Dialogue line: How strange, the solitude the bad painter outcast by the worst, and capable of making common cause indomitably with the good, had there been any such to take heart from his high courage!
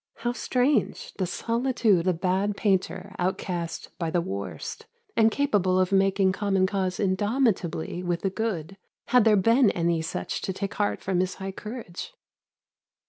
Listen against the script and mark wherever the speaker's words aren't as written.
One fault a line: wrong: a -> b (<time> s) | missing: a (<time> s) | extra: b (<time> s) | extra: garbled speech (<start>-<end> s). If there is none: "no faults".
no faults